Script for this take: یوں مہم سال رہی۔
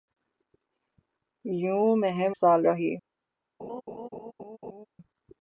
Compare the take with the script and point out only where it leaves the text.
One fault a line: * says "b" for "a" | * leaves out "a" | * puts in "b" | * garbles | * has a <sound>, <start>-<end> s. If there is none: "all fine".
* has a laugh, 3.6-4.9 s